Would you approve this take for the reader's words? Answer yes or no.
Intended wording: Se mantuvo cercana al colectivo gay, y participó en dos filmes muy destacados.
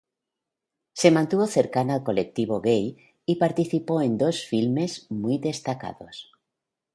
yes